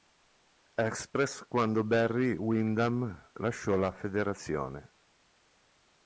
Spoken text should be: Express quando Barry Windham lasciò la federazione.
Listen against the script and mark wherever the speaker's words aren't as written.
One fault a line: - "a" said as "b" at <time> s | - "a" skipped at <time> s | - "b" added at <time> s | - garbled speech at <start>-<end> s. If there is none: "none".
none